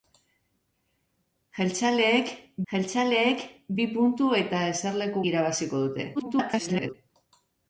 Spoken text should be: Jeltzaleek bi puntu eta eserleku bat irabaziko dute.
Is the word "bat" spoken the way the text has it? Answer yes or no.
no